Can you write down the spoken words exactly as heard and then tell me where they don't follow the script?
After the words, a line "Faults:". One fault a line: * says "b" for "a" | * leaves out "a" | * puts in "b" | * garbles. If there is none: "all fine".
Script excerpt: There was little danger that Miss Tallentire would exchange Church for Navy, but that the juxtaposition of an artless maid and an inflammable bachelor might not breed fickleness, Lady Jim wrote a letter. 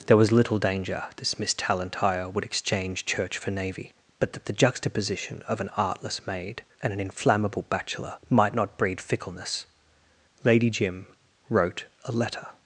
There was little danger this Miss Tallentire would exchange Church for Navy, but that the juxtaposition of an artless maid and an inflammable bachelor might not breed fickleness, Lady Jim wrote a letter.
Faults:
* says "this" for "that"